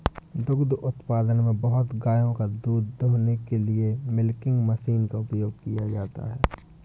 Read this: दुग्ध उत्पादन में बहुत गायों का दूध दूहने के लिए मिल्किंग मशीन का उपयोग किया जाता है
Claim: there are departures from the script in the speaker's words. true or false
false